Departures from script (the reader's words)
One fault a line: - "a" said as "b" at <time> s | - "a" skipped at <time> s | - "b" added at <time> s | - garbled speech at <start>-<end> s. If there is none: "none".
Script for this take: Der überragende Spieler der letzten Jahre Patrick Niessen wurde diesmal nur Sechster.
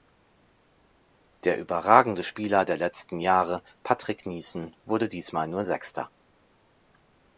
none